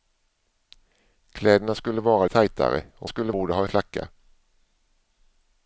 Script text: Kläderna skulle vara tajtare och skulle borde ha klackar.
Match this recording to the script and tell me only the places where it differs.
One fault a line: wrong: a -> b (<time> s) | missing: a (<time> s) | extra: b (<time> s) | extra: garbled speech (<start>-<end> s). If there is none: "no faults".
no faults